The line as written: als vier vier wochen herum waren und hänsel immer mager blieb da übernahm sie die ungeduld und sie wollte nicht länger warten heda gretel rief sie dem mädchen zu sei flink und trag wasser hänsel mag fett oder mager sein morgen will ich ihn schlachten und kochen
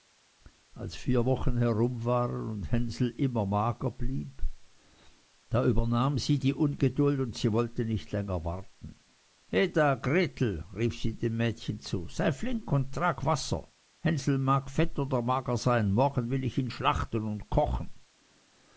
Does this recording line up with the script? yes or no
no